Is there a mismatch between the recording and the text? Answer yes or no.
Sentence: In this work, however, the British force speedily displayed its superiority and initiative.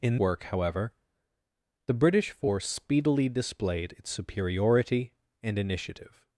yes